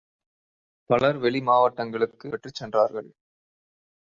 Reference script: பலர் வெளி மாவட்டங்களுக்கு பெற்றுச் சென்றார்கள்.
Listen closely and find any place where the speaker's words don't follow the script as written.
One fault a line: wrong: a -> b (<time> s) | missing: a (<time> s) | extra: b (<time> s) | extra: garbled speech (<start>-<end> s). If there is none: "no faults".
no faults